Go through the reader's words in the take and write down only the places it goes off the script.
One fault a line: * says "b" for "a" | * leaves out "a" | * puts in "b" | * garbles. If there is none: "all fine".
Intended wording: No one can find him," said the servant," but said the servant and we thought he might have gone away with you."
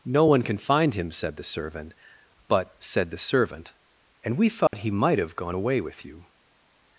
all fine